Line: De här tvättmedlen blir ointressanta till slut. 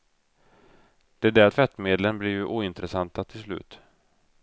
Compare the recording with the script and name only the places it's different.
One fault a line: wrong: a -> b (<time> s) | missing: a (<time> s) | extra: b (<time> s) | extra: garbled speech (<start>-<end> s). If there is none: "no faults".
wrong: här -> där (1.3 s)
extra: ju (2.3 s)